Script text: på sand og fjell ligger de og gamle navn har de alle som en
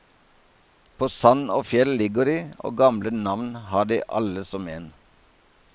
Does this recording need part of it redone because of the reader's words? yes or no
no